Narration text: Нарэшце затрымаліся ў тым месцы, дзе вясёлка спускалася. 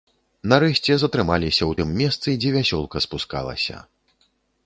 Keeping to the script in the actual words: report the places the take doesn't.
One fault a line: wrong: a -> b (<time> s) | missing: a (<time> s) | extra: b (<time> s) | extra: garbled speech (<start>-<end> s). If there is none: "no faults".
no faults